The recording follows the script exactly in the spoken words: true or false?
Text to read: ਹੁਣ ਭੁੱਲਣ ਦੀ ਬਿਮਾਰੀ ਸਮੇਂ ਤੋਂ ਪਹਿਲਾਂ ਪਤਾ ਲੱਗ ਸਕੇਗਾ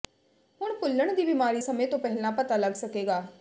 true